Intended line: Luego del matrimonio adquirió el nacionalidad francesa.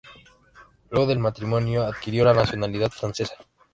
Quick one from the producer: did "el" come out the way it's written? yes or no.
no